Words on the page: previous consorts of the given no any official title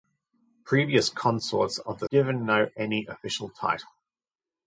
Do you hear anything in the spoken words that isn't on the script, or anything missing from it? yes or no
no